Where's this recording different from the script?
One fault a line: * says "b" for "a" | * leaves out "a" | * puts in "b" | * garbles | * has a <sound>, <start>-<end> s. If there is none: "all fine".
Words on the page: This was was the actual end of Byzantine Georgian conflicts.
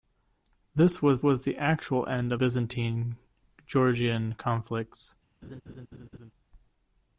* has a laugh, 5.4-6.3 s